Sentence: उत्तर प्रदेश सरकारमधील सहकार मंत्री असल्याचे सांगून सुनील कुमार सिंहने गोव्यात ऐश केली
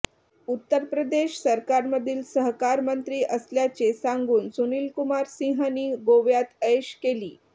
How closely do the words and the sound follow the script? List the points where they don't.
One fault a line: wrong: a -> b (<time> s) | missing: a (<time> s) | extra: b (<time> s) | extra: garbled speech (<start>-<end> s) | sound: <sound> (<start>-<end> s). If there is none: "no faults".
no faults